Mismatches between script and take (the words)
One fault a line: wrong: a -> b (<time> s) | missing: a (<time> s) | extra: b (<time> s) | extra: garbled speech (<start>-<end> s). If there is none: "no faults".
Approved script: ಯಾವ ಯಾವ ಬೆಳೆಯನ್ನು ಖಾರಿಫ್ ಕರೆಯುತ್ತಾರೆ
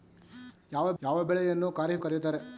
no faults